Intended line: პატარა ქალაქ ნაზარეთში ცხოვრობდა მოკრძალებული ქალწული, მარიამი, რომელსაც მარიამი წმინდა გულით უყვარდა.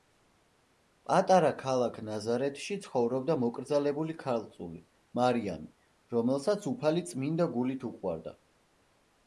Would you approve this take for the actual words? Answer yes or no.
no